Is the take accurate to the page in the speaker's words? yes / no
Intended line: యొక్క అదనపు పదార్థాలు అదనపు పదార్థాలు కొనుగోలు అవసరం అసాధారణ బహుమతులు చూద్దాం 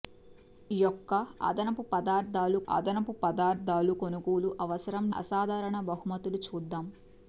yes